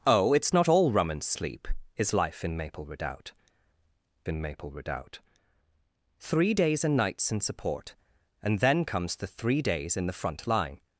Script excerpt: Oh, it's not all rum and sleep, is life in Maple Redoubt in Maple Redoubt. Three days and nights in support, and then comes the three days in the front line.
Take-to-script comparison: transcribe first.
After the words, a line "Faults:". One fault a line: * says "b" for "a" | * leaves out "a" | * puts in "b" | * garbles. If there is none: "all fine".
Oh, it's not all rum and sleep, is life in Maple Redoubt in Maple Redoubt. Three days and nights in support, and then comes the three days in the front line.
Faults:
all fine